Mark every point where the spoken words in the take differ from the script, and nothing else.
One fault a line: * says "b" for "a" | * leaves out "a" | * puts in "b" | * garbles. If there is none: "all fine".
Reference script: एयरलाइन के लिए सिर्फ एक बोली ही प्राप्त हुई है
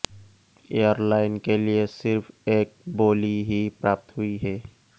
all fine